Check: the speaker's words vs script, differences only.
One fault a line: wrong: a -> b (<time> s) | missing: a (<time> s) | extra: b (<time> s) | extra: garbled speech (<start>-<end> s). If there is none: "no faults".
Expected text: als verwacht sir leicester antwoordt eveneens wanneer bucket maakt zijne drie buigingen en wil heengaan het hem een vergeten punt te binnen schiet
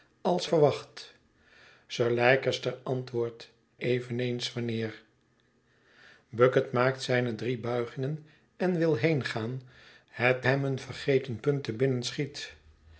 no faults